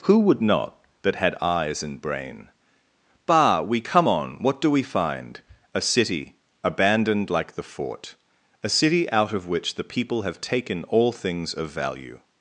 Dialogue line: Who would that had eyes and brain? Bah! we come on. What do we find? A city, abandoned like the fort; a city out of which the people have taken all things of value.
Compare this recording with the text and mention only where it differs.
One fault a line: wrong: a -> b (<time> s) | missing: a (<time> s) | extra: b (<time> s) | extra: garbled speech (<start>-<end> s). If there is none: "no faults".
extra: not (0.4 s)